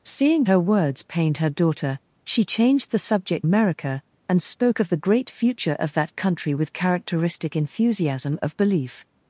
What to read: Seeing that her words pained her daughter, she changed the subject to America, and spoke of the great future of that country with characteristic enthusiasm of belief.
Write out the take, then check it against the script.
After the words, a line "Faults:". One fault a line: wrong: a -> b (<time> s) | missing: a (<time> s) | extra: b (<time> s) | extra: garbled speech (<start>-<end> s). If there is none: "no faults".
Seeing her words pained her daughter, she changed the subject America, and spoke of the great future of that country with characteristic enthusiasm of belief.
Faults:
missing: that (0.5 s)
missing: to (3.5 s)